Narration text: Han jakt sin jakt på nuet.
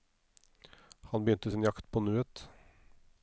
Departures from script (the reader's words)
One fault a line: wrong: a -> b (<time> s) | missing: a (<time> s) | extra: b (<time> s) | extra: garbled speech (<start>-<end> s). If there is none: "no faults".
wrong: jakt -> begynte (1.2 s)